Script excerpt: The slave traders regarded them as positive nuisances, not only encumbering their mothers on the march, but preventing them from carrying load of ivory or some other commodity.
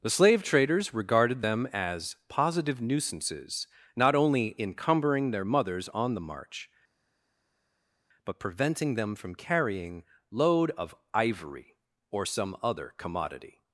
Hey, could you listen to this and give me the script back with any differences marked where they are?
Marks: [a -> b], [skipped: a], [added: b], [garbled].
The slave traders regarded them as positive nuisances, not only encumbering their mothers on the march, but preventing them from carrying load of ivory or some other commodity.